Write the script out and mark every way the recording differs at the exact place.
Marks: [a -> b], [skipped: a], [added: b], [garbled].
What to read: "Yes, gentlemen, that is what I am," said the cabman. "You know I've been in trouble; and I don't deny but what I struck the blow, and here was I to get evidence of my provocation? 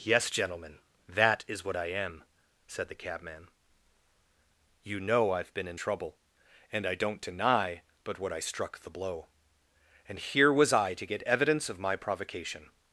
"Yes, gentlemen, that is what I am," said the cabman. "You know I've been in trouble; and I don't deny but what I struck the blow, and here was I to get evidence of my provocation?